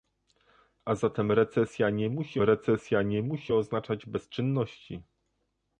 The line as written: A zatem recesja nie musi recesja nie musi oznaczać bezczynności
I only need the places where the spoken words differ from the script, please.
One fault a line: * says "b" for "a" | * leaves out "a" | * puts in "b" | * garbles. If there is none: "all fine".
all fine